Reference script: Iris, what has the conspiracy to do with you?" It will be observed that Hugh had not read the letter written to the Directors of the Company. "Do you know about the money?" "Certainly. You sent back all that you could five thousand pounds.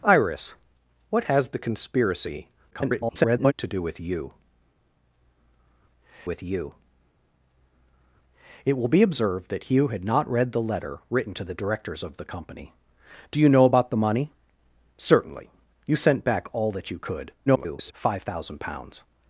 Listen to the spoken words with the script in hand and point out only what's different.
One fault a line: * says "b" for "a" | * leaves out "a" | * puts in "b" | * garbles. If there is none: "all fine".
* garbles
* puts in "with you"
* garbles